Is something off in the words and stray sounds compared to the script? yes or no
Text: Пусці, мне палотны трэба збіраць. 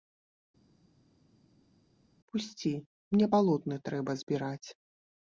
no